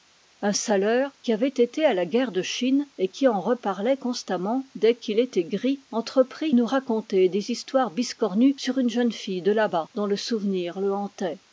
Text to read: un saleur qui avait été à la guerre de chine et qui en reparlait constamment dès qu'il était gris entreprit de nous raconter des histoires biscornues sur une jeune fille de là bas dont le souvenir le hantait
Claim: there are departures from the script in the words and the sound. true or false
true